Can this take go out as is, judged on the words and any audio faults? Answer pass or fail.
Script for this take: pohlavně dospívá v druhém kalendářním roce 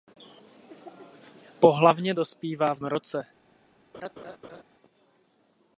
fail